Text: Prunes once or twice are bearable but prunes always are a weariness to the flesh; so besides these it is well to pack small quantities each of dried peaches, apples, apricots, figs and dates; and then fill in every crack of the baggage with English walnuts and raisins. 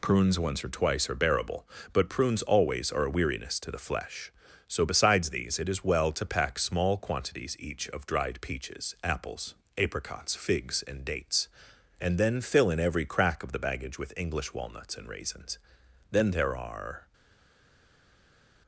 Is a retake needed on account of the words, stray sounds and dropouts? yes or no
yes